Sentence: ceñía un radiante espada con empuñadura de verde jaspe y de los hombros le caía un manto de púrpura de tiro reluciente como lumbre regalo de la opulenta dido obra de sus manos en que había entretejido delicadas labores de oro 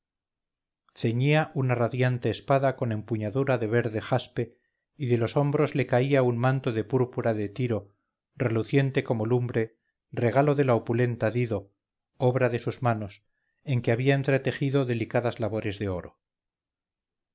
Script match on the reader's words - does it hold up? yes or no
no